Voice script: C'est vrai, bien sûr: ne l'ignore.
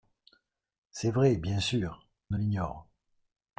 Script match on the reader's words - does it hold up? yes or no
yes